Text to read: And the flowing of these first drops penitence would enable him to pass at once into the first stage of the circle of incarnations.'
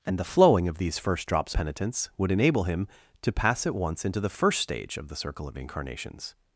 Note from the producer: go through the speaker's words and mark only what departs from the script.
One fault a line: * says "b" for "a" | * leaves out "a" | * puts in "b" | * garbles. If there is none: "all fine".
all fine